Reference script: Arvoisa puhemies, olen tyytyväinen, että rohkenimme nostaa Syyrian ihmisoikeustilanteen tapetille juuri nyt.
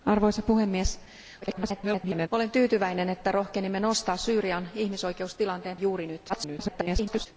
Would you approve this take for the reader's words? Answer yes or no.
no